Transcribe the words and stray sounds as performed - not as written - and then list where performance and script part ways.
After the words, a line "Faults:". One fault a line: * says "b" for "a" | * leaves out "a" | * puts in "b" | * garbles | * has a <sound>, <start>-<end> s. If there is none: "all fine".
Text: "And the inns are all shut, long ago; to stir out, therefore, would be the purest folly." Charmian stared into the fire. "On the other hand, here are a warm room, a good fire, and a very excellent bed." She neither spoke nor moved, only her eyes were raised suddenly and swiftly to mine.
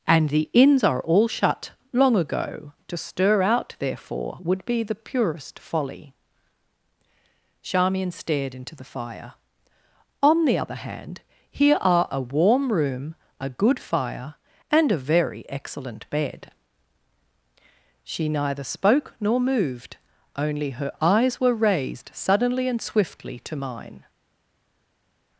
"And the inns are all shut, long ago; to stir out, therefore, would be the purest folly." Charmian stared into the fire. "On the other hand, here are a warm room, a good fire, and a very excellent bed." She neither spoke nor moved, only her eyes were raised suddenly and swiftly to mine.
Faults:
all fine